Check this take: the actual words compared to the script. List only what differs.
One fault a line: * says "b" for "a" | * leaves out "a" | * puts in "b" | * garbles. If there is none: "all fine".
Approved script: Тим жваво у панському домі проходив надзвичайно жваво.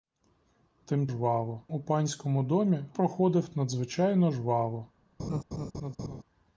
all fine